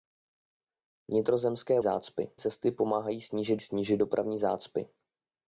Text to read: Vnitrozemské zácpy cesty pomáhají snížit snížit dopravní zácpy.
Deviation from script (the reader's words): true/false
false